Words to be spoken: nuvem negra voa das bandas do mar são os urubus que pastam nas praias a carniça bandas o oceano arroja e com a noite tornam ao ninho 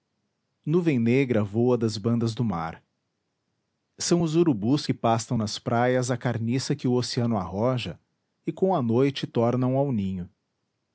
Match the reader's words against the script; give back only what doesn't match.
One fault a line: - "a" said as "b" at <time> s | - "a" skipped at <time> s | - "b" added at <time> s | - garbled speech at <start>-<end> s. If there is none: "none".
- "bandas" said as "que" at 6.8 s